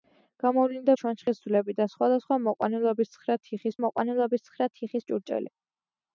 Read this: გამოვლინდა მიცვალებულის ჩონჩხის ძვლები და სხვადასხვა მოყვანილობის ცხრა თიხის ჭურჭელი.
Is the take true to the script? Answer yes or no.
no